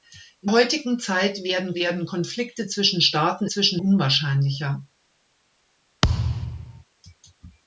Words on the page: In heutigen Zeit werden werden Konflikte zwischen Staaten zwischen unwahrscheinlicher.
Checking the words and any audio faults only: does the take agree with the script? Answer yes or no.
no